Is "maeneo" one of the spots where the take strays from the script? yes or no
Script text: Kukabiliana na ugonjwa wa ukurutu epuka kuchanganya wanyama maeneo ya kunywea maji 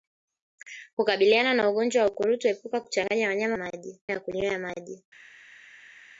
yes